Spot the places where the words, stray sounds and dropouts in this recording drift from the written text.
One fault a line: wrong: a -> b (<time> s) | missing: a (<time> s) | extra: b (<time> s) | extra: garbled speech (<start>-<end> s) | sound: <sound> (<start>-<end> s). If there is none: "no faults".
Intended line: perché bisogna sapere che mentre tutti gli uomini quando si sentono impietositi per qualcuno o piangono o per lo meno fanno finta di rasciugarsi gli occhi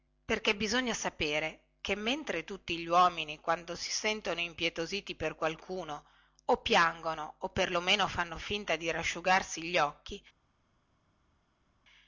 no faults